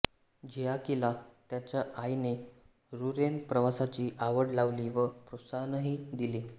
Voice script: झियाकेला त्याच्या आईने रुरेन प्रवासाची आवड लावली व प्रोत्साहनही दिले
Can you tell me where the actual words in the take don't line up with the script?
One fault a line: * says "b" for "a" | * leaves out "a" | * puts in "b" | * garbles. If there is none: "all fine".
all fine